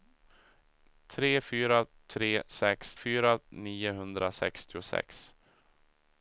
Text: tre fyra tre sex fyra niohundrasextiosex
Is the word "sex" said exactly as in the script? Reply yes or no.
yes